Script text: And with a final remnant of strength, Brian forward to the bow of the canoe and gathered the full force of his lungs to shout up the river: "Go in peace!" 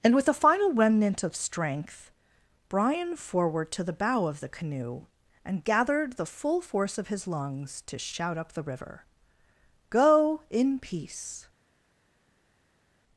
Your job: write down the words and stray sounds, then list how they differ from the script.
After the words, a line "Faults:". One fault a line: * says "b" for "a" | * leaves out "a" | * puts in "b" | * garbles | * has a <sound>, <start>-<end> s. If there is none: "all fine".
And with a final remnant of strength, Brian forward to the bow of the canoe and gathered the full force of his lungs to shout up the river: "Go in peace!"
Faults:
all fine